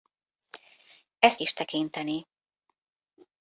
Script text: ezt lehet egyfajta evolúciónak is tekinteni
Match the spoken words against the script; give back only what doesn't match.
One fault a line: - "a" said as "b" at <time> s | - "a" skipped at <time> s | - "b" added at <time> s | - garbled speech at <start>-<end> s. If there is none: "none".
- "lehet egyfajta evolúciónak" skipped at 1.4 s